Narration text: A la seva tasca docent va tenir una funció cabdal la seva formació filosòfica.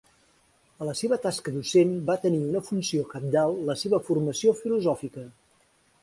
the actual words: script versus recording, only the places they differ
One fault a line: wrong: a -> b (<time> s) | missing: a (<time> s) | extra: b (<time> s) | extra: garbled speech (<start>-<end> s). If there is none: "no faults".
no faults